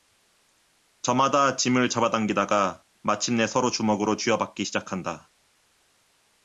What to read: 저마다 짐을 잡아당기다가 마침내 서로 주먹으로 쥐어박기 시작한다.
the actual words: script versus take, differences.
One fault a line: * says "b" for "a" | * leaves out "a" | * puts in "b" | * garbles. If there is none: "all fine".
all fine